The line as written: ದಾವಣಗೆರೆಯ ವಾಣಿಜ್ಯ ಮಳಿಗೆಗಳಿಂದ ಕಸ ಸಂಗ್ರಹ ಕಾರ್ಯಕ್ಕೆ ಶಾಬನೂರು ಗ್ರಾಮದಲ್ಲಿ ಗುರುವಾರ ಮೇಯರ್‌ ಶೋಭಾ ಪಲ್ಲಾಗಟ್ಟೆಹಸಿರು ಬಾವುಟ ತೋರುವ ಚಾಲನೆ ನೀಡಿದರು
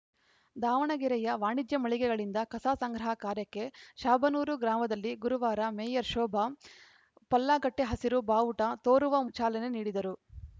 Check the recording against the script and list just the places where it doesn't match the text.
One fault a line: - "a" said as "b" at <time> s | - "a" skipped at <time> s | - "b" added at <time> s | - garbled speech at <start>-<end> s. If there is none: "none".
none